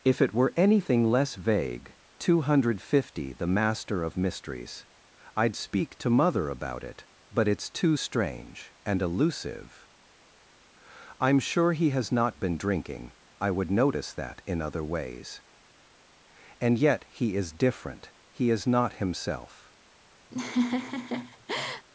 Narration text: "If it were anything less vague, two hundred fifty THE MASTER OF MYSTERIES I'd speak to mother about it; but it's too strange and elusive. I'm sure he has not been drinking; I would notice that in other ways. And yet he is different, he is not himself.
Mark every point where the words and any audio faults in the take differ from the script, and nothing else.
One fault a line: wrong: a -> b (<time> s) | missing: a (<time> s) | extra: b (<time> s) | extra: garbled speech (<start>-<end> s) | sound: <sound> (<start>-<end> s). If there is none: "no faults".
sound: laugh (20.3-21.9 s)